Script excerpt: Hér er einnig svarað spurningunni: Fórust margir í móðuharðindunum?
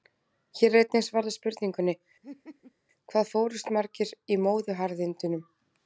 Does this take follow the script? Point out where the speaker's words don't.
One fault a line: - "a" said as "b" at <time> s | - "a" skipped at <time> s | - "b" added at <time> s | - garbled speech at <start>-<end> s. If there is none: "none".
- "Hvað" added at 3.1 s